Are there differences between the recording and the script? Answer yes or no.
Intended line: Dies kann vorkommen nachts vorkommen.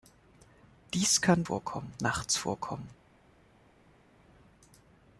no